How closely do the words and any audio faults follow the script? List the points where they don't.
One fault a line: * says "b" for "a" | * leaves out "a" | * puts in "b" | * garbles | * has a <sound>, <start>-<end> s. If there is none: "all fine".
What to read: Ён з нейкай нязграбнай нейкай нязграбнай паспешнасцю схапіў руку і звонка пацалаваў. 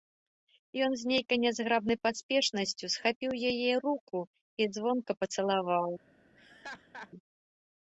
* leaves out "нейкай нязграбнай"
* puts in "яе"
* has a laugh, 6.3-7.1 s